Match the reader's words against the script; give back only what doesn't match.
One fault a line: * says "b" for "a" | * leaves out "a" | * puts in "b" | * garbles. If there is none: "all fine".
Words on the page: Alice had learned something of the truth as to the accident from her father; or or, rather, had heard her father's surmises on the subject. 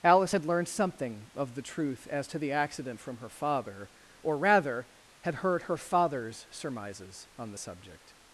* leaves out "or"